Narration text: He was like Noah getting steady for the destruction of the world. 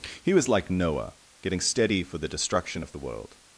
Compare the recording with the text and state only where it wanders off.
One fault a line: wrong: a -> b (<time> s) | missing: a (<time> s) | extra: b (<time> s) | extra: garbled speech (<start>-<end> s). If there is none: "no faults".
no faults